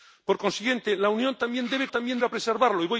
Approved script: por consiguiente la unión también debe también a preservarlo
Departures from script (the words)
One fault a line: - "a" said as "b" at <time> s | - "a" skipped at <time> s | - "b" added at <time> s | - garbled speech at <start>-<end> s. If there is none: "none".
none